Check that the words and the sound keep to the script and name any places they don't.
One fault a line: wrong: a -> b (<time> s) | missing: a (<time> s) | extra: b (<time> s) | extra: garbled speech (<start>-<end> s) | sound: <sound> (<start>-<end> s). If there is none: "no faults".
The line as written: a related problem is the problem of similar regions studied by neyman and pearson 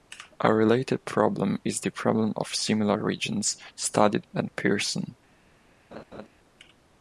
missing: by neyman (4.2 s)
sound: laugh (5.9-6.3 s)